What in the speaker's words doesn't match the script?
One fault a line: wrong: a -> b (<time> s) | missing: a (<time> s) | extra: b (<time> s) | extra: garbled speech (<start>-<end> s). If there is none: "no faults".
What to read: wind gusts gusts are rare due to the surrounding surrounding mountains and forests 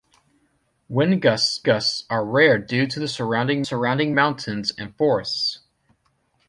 no faults